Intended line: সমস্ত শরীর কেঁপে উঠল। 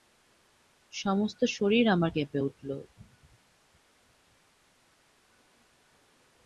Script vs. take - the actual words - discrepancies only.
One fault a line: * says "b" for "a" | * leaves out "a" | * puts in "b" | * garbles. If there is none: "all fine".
* puts in "আমার"